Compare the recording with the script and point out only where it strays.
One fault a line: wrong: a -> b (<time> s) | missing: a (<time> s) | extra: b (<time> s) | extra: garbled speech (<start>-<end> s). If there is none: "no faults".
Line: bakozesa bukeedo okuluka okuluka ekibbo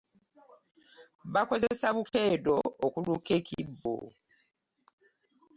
missing: okuluka (3.3 s)